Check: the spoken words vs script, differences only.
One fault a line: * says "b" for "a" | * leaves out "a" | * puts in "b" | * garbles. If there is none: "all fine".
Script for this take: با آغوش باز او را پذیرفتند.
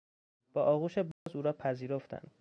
all fine